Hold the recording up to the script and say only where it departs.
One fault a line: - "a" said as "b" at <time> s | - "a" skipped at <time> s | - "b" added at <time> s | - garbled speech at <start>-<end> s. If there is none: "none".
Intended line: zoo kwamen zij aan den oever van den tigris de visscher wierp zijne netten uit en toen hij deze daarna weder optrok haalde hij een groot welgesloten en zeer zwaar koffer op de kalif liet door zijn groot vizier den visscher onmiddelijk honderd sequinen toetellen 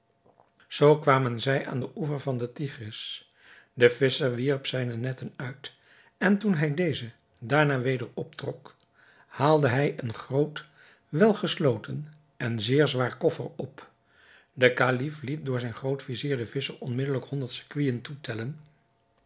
none